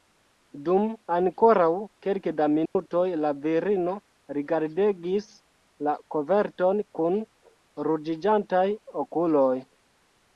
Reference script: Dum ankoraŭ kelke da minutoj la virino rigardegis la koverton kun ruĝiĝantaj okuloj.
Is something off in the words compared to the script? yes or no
no